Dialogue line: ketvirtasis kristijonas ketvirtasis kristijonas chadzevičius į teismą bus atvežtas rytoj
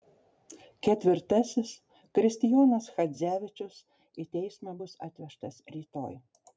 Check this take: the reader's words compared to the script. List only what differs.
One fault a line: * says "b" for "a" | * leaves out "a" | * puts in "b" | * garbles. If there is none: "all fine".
* leaves out "ketvirtasis kristijonas"